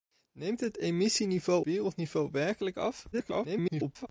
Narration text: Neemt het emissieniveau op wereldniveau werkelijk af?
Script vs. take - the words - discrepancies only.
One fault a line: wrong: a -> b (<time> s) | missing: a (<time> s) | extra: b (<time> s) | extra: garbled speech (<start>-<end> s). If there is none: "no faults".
missing: op (1.6 s)
extra: garbled speech (3.1-4.1 s)